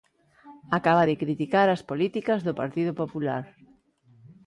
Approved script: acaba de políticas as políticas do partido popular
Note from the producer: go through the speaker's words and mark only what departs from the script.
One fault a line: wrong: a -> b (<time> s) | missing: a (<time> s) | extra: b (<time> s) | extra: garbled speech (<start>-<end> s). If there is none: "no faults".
wrong: políticas -> criticar (1.2 s)